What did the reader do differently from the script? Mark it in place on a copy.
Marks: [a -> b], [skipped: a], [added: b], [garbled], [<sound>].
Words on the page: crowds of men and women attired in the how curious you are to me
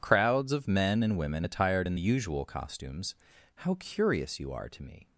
crowds of men and women attired in the [added: usual costumes] how curious you are to me